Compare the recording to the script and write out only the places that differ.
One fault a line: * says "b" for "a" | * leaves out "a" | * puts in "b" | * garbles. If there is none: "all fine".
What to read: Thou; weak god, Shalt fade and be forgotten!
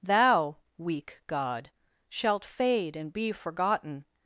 all fine